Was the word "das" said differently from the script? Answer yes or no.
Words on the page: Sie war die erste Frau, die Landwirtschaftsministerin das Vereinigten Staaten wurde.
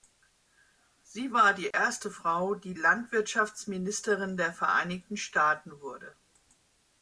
yes